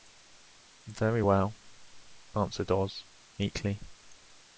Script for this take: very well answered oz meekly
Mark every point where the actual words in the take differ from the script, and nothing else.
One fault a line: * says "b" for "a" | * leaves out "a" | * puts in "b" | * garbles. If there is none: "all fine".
all fine